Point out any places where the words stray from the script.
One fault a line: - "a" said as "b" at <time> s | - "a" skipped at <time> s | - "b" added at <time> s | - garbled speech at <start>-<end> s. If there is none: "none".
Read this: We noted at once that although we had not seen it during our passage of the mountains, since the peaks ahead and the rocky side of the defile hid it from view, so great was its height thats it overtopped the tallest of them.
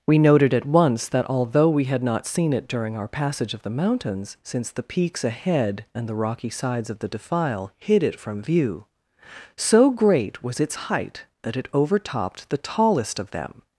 - "side" said as "sides" at 6.5 s
- "thats" said as "that" at 11.4 s